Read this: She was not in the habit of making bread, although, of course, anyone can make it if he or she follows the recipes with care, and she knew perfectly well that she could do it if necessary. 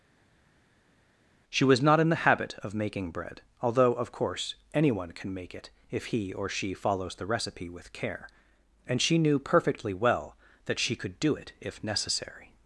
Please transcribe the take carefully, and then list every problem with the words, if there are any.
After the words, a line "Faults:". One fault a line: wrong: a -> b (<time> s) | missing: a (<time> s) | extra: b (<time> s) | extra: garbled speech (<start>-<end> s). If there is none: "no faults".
She was not in the habit of making bread, although, of course, anyone can make it if he or she follows the recipe with care, and she knew perfectly well that she could do it if necessary.
Faults:
wrong: recipes -> recipe (7.3 s)